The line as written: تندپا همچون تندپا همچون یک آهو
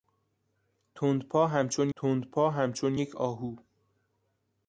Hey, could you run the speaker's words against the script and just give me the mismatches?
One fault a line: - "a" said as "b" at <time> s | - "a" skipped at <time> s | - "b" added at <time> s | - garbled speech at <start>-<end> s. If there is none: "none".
none